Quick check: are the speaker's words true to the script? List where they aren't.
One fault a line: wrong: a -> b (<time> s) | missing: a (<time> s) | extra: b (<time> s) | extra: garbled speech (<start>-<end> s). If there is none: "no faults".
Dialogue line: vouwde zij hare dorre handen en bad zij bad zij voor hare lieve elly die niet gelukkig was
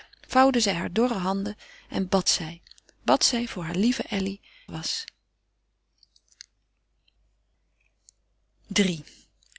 missing: die niet gelukkig (4.4 s)